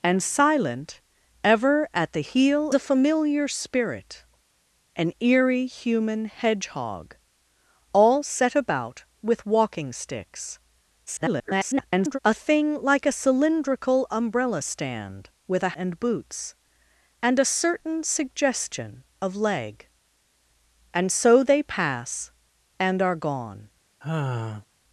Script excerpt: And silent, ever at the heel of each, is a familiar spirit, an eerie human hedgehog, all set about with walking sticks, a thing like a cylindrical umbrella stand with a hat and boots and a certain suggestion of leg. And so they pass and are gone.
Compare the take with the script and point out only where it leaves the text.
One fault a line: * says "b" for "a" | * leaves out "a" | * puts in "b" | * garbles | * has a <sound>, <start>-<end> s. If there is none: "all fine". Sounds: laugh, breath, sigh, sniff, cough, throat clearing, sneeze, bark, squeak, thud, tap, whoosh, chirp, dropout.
* leaves out "of each is"
* garbles
* leaves out "hat"
* has a sigh, 24.0-24.7 s